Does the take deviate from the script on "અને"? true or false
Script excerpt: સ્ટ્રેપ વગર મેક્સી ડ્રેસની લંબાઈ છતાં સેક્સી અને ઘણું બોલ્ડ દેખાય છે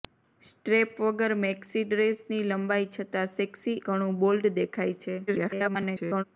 true